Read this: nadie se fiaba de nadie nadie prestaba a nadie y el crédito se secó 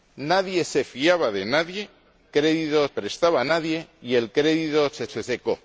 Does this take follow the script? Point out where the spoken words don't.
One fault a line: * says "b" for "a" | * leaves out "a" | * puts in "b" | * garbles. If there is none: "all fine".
* says "crédito" for "nadie"
* puts in "se"